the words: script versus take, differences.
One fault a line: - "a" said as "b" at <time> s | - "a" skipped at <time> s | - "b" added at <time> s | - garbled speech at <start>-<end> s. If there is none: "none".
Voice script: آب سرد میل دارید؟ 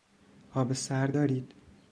- "میل" skipped at 1.2 s